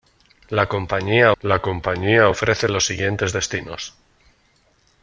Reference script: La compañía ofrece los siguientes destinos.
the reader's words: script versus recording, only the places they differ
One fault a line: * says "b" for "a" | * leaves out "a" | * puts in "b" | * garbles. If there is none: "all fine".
* puts in "la compañía"